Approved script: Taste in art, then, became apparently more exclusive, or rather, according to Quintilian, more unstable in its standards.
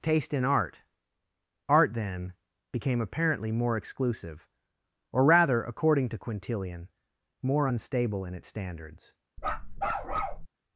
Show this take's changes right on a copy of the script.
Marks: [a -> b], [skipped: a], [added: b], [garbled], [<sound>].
Taste in art, [added: art] then, became apparently more exclusive, or rather, according to Quintilian, more unstable in its standards. [bark]